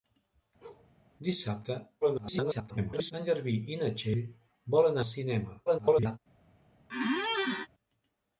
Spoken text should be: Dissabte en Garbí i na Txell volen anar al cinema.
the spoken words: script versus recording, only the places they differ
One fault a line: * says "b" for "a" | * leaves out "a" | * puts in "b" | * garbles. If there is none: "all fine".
* garbles
* leaves out "anar"
* garbles